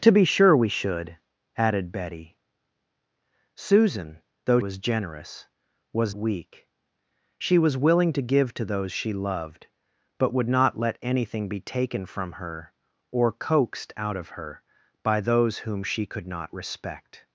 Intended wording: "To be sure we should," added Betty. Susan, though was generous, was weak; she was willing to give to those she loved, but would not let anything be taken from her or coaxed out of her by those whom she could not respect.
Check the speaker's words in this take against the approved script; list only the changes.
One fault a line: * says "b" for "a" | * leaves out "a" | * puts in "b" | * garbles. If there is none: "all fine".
all fine